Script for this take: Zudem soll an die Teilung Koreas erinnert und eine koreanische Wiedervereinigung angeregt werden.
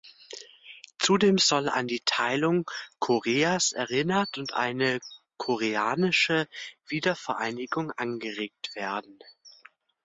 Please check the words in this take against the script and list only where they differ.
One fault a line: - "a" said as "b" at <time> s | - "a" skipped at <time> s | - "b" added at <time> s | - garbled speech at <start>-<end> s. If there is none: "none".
none